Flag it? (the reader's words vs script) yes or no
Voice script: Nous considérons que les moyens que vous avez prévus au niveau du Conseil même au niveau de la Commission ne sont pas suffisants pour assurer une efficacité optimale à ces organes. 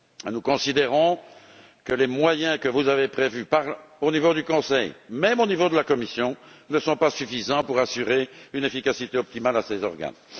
no